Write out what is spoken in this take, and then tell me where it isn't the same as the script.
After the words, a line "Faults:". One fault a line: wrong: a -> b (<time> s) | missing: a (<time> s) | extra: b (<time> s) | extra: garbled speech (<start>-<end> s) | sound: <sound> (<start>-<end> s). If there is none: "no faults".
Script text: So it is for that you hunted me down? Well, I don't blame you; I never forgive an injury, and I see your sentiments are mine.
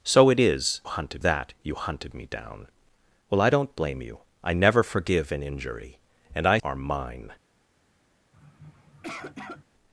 So it is hunted that you hunted me down? Well, I don't blame you; I never forgive an injury, and I are mine.
Faults:
wrong: for -> hunted (0.8 s)
missing: see your sentiments (6.6 s)
sound: sniff (8.3-9.6 s)